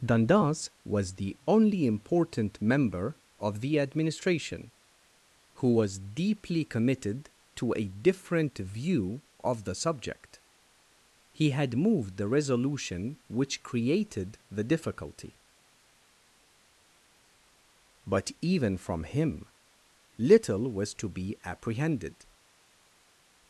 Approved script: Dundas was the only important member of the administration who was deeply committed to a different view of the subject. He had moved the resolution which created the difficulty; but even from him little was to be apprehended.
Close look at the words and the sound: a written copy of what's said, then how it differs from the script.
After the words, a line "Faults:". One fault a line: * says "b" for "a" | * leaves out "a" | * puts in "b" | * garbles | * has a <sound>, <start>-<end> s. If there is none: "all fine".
Dundas was the only important member of the administration who was deeply committed to a different view of the subject. He had moved the resolution which created the difficulty; but even from him little was to be apprehended.
Faults:
all fine